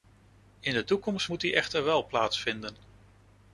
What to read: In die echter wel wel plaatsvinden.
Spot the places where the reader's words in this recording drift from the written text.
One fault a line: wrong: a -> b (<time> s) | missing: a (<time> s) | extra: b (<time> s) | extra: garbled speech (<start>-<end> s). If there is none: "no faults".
extra: de toekomst moet (0.7 s)
missing: wel (2.1 s)